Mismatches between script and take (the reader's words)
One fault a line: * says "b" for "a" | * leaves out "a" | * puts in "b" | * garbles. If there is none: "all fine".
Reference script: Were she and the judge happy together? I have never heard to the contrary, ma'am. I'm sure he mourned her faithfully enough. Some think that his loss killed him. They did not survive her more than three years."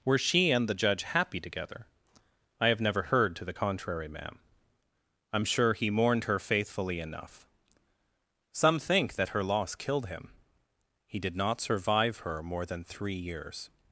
* says "her" for "his"
* says "He" for "They"